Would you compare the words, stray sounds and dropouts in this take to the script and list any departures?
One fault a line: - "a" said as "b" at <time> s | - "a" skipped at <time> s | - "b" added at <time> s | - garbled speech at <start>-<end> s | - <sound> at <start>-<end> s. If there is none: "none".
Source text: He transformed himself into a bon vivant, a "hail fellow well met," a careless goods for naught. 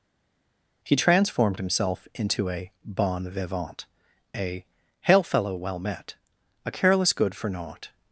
- "goods" said as "good" at 7.1 s